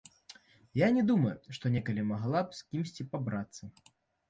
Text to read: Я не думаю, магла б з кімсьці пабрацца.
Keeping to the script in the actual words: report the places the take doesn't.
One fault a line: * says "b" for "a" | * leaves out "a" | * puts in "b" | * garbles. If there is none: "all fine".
* puts in "што некалі"